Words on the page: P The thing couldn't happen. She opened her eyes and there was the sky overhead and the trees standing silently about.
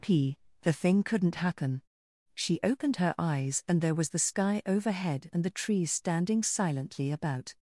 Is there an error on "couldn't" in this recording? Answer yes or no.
no